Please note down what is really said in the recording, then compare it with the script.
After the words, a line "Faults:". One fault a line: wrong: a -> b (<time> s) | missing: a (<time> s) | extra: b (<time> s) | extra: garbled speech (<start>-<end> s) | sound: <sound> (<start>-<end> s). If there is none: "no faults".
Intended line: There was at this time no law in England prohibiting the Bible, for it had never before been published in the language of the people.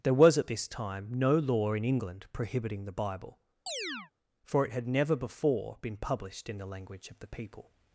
There was at this time no law in England prohibiting the Bible, for it had never before been published in the language of the people.
Faults:
sound: chirp (3.7-4.1 s)